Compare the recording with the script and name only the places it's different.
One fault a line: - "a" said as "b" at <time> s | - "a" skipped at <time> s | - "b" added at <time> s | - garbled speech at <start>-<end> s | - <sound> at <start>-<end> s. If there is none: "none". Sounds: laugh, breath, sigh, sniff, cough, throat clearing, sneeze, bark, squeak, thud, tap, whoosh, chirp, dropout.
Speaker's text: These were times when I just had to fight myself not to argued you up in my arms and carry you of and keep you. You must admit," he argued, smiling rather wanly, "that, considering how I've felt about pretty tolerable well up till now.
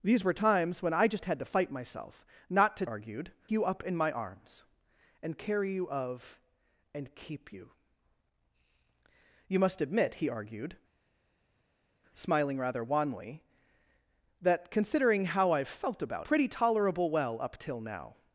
none